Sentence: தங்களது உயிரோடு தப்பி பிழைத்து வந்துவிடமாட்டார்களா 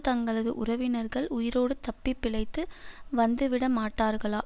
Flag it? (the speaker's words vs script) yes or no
yes